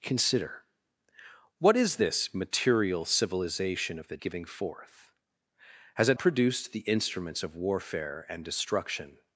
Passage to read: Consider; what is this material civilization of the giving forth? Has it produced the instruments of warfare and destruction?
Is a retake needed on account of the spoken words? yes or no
no